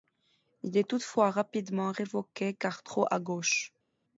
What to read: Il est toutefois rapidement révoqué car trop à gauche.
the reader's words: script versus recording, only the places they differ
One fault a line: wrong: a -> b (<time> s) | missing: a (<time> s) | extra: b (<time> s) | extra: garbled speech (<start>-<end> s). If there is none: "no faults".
no faults